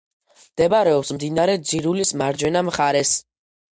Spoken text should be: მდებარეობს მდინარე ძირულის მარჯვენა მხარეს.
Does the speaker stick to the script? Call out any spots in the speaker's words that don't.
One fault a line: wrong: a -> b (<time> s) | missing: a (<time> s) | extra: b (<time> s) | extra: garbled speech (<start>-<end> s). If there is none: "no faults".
no faults